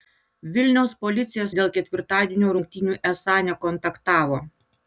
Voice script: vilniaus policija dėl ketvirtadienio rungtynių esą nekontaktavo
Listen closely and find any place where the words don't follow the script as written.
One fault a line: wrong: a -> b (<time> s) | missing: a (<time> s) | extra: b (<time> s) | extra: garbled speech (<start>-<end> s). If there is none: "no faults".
no faults